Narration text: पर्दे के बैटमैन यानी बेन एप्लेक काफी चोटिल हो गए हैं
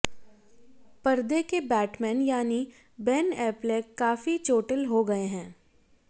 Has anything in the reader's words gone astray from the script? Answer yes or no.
no